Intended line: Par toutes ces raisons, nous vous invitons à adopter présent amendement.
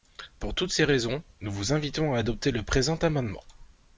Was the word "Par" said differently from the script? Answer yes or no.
yes